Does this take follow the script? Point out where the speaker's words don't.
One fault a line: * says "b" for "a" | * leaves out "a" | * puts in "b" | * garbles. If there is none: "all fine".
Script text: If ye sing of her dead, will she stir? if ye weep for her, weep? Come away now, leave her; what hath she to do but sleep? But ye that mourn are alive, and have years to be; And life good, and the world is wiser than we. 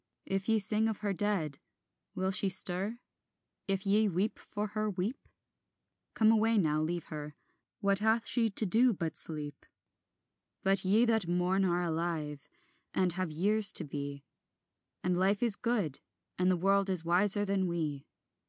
* puts in "is"